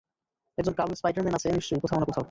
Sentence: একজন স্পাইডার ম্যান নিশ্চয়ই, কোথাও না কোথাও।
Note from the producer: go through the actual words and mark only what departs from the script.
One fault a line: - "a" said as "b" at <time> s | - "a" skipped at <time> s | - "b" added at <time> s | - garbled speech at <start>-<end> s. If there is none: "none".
- "কালো" added at 0.7 s
- "আছে" added at 1.3 s